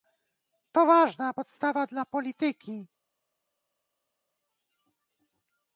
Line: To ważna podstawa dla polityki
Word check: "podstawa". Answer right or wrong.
right